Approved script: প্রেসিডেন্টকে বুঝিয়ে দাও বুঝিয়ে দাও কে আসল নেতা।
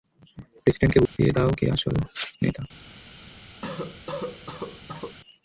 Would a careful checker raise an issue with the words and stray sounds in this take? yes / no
yes